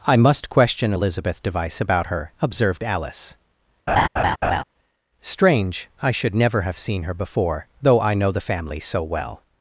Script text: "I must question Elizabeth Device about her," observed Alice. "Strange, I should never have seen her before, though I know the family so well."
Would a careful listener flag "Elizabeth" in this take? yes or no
no